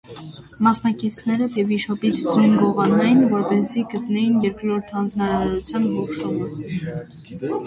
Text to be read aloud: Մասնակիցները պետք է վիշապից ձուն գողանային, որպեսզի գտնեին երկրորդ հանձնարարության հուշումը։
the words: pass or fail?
fail